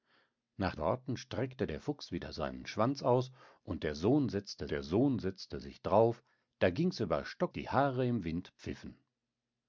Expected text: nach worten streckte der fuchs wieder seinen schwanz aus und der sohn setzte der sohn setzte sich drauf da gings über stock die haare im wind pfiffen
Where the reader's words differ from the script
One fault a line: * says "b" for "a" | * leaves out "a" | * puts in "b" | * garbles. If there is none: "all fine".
all fine